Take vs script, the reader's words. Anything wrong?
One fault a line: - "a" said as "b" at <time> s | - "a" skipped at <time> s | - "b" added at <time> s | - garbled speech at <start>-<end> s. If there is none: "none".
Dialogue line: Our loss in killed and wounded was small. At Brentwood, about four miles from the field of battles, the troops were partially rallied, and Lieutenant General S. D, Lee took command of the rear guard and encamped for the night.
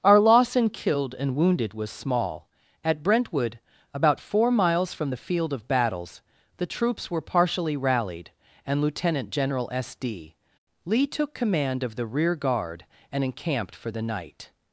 none